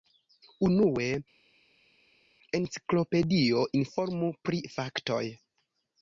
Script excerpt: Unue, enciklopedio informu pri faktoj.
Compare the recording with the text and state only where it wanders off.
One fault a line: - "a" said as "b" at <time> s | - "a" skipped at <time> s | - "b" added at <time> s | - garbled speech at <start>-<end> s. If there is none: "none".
none